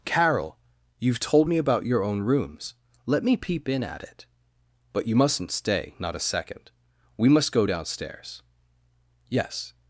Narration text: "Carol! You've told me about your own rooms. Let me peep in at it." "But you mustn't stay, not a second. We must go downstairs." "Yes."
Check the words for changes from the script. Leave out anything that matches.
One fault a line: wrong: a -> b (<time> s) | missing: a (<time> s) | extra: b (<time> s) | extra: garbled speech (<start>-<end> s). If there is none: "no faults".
no faults